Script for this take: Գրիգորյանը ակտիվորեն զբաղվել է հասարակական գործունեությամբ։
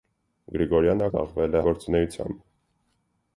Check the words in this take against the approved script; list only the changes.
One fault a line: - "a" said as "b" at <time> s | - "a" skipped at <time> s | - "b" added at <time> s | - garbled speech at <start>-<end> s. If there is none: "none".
- "ակտիվորեն" skipped at 1.1 s
- "հասարակական" skipped at 1.6 s